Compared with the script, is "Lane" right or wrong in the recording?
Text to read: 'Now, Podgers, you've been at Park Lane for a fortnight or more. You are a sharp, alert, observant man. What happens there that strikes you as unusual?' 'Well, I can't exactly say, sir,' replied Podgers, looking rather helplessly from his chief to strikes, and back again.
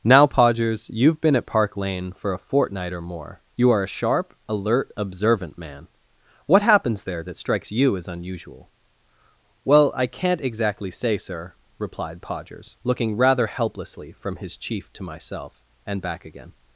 right